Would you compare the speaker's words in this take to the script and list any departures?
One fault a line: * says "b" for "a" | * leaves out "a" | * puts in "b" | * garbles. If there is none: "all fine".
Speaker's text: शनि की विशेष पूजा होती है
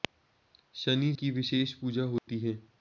all fine